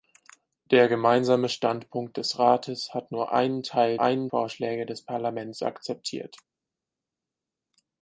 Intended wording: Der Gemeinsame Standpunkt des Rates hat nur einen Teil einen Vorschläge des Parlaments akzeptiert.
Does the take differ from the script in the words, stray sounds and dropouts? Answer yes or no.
no